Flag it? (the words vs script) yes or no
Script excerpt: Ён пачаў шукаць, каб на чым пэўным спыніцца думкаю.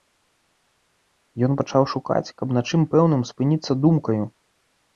no